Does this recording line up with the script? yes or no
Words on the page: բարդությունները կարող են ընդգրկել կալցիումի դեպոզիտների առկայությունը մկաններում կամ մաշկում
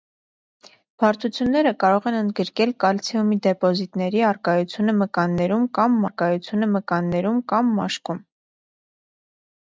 no